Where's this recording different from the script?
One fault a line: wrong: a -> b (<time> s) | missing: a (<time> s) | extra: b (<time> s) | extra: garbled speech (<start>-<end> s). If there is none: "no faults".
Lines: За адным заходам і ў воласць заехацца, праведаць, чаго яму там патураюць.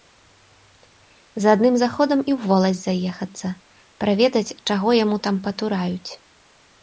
no faults